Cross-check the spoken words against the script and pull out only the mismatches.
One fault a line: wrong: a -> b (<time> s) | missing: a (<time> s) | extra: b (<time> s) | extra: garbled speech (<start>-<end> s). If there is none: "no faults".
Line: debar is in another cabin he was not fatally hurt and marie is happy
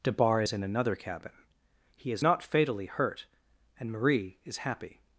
wrong: was -> is (2.1 s)